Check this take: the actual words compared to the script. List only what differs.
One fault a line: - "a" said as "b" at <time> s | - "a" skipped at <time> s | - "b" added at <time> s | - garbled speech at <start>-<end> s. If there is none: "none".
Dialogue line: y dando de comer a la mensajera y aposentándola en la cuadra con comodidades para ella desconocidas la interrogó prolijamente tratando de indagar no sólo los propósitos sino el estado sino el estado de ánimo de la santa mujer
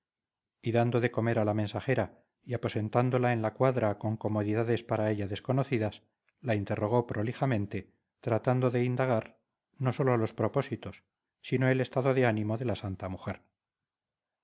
- "sino el estado" skipped at 12.2 s